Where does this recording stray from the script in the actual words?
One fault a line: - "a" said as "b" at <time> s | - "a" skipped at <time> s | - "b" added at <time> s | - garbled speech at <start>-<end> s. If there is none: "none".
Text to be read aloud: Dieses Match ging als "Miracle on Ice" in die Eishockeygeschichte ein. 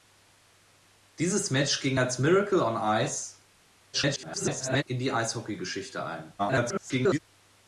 - garbled speech at 3.9-4.8 s
- garbled speech at 6.4-7.2 s